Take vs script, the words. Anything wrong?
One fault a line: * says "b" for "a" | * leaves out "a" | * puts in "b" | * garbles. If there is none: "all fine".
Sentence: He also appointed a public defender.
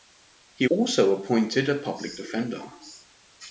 all fine